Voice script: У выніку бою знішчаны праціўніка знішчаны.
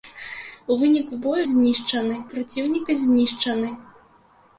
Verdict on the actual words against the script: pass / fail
pass